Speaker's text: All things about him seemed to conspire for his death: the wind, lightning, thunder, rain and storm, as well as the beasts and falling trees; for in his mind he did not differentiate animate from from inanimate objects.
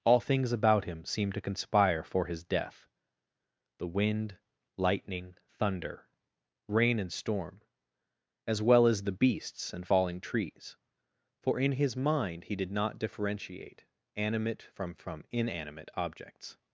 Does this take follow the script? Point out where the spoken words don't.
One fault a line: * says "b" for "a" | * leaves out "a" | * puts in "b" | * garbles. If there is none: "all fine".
all fine